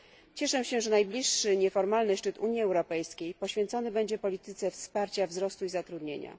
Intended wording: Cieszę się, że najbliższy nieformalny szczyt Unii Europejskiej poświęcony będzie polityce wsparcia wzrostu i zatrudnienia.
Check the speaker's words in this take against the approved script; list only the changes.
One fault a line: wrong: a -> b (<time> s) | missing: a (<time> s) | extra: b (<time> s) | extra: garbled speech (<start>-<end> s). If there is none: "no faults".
no faults